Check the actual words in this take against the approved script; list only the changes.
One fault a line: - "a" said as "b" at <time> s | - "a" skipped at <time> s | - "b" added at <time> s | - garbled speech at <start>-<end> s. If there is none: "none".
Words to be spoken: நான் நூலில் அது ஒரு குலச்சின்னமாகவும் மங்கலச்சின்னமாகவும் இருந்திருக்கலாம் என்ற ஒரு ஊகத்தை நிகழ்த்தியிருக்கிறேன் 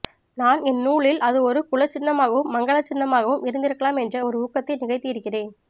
- "என்" added at 0.6 s